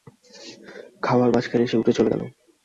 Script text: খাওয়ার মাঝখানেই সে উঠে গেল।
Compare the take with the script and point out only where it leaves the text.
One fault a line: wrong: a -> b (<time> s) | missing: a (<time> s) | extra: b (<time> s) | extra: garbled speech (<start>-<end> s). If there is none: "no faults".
extra: চলে (1.9 s)